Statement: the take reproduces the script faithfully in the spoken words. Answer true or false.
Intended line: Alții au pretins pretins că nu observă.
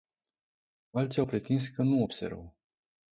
false